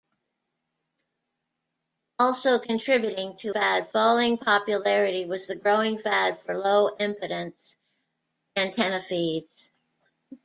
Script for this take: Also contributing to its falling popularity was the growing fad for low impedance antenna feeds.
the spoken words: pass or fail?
fail